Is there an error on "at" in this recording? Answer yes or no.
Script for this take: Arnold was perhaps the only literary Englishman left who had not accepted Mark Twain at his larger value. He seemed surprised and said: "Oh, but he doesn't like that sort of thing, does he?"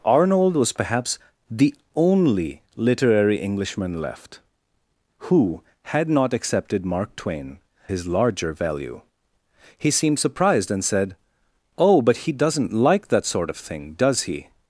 yes